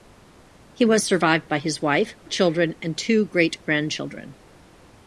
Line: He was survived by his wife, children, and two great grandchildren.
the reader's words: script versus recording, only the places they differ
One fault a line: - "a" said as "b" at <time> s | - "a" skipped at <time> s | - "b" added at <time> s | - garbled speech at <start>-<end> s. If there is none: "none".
none